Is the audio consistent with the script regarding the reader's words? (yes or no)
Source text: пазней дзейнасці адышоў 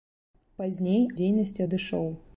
yes